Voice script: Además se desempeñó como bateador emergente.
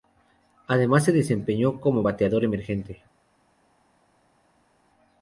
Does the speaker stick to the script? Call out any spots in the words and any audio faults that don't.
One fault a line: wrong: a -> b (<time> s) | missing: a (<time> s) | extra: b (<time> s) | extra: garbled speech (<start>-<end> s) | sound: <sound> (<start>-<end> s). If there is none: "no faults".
no faults